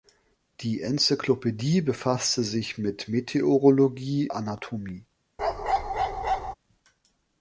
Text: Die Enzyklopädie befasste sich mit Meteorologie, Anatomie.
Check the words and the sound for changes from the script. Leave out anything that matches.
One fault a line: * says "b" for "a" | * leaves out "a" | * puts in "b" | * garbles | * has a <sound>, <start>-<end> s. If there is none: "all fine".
* has a bark, 5.4-6.5 s